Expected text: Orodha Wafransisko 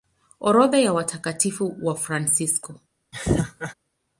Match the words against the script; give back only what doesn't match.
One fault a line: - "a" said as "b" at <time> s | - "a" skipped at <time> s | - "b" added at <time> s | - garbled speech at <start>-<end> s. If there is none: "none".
- "ya Watakatifu" added at 0.8 s